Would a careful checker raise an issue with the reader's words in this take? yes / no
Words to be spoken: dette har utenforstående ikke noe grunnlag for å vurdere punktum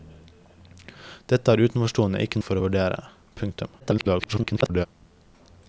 yes